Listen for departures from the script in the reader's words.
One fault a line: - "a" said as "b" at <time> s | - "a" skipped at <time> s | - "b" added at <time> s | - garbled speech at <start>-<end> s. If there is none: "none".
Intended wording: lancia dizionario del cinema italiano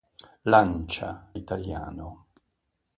- "dizionario del cinema" skipped at 1.3 s